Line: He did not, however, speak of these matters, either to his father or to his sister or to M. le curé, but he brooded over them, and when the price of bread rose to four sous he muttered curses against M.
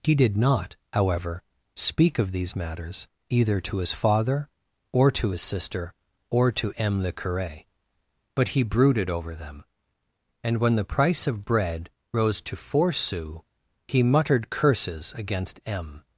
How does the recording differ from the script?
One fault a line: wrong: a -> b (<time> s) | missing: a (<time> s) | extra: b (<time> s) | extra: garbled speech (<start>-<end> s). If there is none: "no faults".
no faults